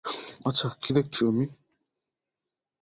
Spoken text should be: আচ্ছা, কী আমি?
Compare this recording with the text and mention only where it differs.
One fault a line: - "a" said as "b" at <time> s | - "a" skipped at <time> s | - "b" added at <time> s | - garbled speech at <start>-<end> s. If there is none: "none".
- "দেখছি" added at 0.9 s